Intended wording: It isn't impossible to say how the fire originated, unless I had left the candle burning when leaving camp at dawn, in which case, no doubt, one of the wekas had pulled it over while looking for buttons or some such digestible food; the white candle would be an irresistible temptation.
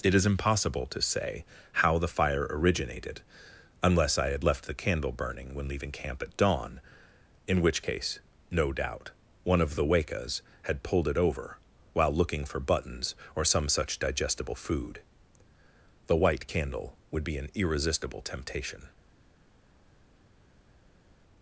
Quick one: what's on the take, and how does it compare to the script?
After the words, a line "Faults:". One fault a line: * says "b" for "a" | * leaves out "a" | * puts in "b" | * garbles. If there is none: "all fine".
It is impossible to say how the fire originated, unless I had left the candle burning when leaving camp at dawn, in which case, no doubt, one of the wekas had pulled it over while looking for buttons or some such digestible food; the white candle would be an irresistible temptation.
Faults:
* says "is" for "isn't"